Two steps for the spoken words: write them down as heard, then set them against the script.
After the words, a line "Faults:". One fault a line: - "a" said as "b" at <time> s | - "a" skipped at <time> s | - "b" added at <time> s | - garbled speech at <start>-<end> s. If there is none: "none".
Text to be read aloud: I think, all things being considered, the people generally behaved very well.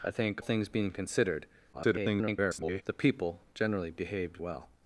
I think, things being considered, [garbled] the people generally behaved well.
Faults:
- "all" skipped at 0.4 s
- garbled speech at 1.7-2.8 s
- "very" skipped at 4.4 s